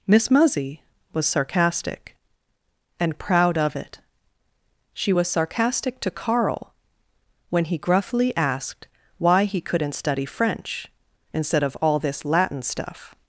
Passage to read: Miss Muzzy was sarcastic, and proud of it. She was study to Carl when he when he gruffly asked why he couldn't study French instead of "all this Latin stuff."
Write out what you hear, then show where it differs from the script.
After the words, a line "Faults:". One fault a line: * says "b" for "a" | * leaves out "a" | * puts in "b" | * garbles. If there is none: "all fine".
Miss Muzzy was sarcastic, and proud of it. She was sarcastic to Carl when he gruffly asked why he couldn't study French instead of "all this Latin stuff."
Faults:
* says "sarcastic" for "study"
* leaves out "when he"